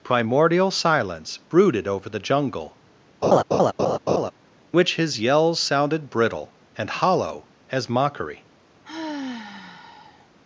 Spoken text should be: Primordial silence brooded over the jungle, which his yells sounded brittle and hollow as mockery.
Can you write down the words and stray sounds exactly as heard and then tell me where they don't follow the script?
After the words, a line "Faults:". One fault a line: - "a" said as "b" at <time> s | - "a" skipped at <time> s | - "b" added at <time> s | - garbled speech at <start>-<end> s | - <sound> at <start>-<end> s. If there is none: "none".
Primordial silence brooded over the jungle, which his yells sounded brittle and hollow as mockery.
Faults:
- laugh at 3.2-4.3 s
- sigh at 8.8-10.3 s